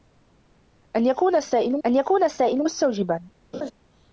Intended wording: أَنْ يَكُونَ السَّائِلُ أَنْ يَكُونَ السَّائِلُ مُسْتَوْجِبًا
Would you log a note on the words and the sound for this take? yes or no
yes